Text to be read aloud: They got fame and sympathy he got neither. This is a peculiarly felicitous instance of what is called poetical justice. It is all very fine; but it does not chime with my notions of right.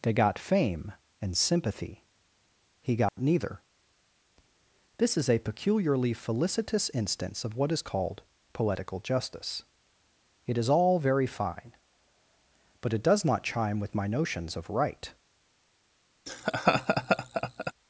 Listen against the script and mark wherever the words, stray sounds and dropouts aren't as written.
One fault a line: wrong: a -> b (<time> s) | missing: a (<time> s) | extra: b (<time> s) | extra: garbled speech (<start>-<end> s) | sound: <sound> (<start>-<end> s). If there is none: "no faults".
sound: dropout (3.1-3.2 s)
sound: laugh (16.3-17.7 s)